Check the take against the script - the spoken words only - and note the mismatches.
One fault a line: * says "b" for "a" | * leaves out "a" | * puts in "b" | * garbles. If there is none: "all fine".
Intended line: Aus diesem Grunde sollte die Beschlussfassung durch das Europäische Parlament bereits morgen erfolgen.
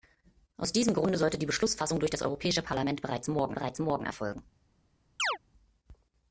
* puts in "bereits morgen"